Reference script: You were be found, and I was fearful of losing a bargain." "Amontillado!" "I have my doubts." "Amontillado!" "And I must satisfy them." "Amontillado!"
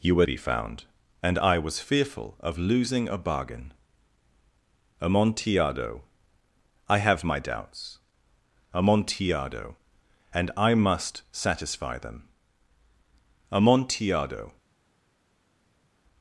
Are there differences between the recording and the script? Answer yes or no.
no